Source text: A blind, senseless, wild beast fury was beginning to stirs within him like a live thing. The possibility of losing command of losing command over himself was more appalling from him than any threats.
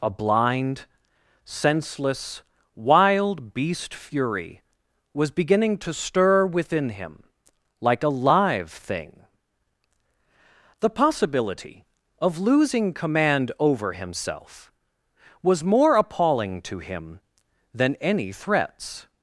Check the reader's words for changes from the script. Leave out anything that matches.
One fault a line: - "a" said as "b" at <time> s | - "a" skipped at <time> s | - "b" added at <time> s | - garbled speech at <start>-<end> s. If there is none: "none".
- "stirs" said as "stir" at 5.9 s
- "of losing command" skipped at 13.5 s
- "from" said as "to" at 16.6 s